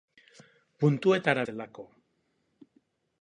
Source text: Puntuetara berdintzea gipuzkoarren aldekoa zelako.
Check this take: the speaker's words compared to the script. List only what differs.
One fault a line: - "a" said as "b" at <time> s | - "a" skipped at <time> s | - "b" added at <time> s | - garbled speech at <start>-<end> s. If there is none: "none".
- "berdintzea gipuzkoarren aldekoa" skipped at 1.4 s